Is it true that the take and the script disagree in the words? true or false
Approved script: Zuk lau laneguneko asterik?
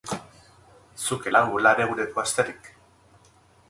false